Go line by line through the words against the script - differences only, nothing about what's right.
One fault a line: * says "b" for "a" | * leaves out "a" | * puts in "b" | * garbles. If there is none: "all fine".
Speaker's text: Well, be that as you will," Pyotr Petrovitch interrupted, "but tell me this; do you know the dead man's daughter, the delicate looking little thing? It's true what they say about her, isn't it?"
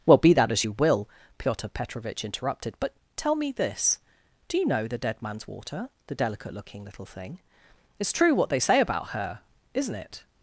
* says "water" for "daughter"